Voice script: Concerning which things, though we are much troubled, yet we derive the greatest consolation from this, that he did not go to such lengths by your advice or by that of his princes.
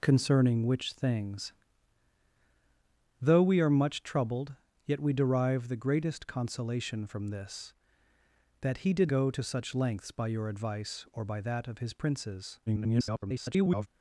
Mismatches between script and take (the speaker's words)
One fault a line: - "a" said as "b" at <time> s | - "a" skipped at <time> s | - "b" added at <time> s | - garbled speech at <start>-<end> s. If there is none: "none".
- "not" skipped at 9.1 s
- garbled speech at 12.7-13.9 s